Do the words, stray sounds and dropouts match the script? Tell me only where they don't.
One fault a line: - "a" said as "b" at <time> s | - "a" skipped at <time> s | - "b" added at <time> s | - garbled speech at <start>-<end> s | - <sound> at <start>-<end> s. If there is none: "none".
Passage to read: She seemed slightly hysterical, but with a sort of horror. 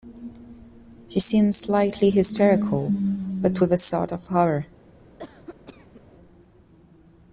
- cough at 5.2-6.0 s